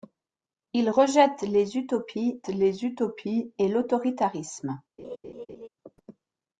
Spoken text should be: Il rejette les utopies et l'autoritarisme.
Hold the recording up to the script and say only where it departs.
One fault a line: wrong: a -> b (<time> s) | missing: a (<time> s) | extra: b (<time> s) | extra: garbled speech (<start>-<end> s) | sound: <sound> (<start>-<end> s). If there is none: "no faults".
extra: les utopies (2.5 s)
sound: laugh (5.0-5.7 s)